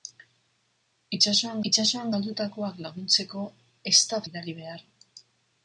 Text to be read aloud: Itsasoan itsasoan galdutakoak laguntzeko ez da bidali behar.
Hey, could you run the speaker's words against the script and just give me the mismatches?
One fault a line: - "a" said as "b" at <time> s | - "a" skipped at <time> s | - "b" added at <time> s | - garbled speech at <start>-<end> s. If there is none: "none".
none